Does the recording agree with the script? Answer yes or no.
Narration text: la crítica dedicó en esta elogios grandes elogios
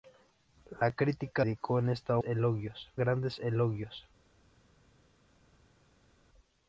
yes